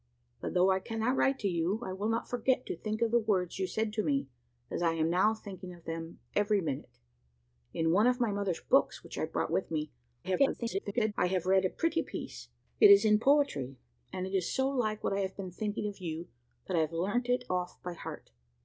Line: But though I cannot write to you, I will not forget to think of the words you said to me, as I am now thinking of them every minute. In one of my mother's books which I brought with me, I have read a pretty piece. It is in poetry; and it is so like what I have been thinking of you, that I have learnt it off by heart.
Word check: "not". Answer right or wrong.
right